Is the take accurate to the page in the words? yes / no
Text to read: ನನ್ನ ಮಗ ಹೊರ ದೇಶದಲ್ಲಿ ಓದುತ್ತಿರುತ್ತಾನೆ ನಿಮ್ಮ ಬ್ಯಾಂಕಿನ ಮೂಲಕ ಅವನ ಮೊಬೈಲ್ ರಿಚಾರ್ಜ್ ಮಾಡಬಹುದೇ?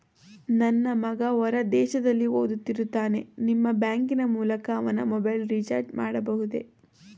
yes